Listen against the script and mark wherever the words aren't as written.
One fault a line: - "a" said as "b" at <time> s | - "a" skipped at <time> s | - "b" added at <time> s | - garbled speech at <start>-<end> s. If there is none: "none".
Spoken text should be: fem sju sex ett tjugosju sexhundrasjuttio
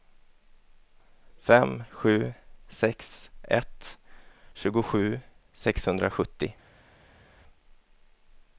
none